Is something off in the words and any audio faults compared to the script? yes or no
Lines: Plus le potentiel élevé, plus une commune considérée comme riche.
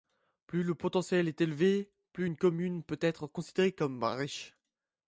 yes